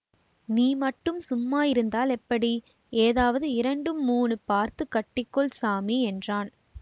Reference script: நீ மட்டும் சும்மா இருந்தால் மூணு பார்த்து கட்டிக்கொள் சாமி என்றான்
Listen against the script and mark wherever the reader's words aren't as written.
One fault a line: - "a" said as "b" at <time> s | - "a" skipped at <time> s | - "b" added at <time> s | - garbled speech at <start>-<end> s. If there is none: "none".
- "எப்படி ஏதாவது இரண்டு" added at 2.2 s